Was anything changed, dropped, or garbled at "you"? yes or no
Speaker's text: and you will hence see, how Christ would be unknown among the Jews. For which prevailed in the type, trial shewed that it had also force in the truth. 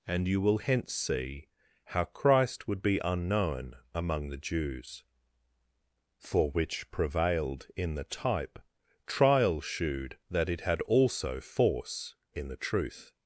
no